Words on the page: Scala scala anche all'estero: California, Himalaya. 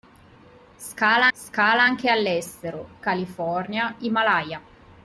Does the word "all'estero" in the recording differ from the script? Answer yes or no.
no